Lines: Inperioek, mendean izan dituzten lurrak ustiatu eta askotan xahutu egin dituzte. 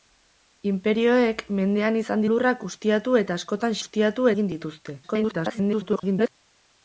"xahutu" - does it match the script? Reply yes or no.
no